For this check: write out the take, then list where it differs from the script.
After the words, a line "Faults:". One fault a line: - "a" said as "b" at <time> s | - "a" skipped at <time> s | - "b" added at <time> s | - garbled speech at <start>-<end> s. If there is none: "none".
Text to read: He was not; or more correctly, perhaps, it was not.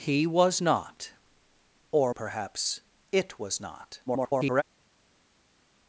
He was not; or perhaps, it was not. [garbled]
Faults:
- "more correctly" skipped at 2.1 s
- garbled speech at 4.1-4.6 s